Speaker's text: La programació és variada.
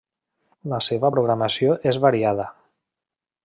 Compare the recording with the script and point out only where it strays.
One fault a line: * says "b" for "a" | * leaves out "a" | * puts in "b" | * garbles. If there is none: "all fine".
* puts in "seva"